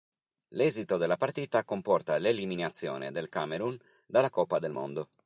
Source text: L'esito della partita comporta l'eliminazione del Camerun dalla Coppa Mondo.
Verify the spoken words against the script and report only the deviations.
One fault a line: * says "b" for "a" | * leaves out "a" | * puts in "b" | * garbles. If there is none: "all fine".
* puts in "del"